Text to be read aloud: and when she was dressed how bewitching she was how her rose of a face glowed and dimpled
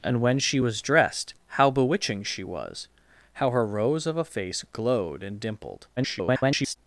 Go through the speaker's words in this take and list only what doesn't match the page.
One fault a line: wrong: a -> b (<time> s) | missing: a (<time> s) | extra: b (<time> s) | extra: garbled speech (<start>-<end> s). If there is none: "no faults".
extra: garbled speech (6.0-6.8 s)